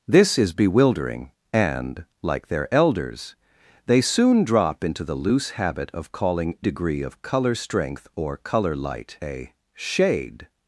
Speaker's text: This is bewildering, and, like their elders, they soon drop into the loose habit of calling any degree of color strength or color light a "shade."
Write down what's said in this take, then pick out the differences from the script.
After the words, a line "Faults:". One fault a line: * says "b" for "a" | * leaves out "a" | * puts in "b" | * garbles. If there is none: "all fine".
This is bewildering, and, like their elders, they soon drop into the loose habit of calling degree of color strength or color light a "shade."
Faults:
* leaves out "any"